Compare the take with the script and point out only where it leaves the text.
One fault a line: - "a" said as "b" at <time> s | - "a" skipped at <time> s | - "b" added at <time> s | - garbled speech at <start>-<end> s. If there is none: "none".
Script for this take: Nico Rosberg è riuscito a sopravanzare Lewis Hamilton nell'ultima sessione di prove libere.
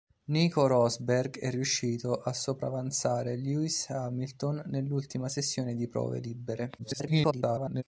- garbled speech at 6.8-7.8 s